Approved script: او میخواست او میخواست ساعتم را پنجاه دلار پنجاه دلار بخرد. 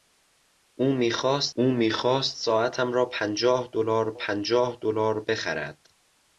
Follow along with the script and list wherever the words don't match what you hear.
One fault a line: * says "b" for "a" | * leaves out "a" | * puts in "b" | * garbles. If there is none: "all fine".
all fine